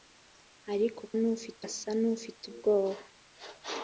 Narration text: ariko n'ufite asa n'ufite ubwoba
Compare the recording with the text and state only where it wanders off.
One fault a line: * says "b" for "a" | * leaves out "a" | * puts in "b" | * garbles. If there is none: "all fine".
all fine